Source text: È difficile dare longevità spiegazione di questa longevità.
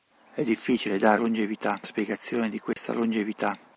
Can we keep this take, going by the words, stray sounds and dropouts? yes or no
no